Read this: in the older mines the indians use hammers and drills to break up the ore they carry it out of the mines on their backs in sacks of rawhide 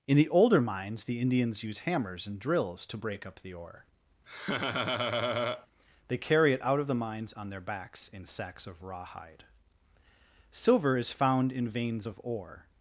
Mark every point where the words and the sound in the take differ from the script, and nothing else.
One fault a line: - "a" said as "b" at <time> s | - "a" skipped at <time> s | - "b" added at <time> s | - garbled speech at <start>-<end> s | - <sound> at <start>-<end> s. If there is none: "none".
- laugh at 4.3-5.7 s
- "silver is found in veins of ore" added at 10.5 s